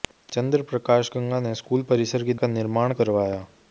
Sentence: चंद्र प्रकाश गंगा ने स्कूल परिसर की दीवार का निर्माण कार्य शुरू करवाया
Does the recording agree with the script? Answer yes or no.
no